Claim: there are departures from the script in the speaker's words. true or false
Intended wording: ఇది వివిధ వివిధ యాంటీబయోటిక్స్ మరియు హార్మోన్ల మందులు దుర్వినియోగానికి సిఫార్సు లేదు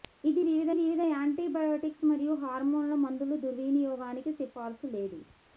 false